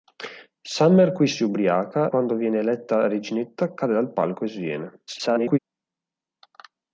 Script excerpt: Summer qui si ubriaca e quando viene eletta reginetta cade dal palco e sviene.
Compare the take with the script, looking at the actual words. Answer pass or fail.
fail